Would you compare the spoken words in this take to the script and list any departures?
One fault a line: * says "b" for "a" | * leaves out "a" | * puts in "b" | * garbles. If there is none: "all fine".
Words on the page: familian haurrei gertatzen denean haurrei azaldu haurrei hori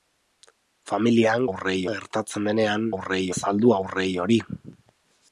all fine